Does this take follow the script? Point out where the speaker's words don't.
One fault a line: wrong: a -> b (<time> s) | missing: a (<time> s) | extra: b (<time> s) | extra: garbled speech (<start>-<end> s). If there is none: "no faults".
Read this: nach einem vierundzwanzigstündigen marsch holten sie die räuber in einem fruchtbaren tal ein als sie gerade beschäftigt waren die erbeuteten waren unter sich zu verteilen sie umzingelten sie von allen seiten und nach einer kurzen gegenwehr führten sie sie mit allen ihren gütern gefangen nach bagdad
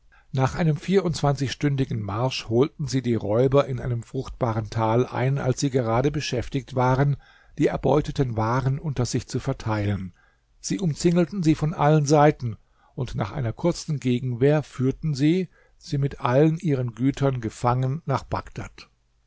no faults